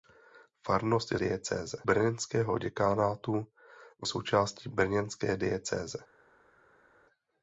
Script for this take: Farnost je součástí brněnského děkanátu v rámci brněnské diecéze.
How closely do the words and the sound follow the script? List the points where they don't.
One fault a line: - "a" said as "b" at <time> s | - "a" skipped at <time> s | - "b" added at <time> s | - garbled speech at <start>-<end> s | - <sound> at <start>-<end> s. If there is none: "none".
- "součástí" said as "diecéze" at 1.1 s
- "rámci" said as "součástí" at 4.0 s